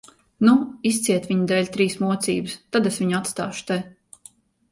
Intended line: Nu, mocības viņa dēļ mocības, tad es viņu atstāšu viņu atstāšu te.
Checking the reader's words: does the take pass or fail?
fail